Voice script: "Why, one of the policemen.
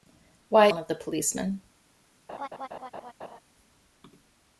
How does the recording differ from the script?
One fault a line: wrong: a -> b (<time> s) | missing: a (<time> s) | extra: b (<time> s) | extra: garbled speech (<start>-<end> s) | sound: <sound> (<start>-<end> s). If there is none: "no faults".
sound: laugh (2.3-3.4 s)